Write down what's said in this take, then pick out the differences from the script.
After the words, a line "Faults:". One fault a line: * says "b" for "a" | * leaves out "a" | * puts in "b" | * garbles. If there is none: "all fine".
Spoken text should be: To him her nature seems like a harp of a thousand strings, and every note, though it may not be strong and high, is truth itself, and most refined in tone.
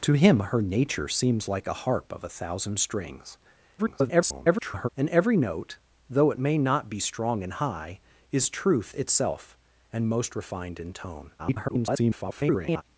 To him her nature seems like a harp of a thousand strings, [garbled] and every note, though it may not be strong and high, is truth itself, and most refined in tone. [garbled]
Faults:
* garbles
* garbles